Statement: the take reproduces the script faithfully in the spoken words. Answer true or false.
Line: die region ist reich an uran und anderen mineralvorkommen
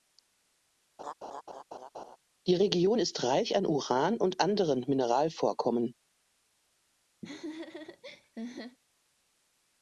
true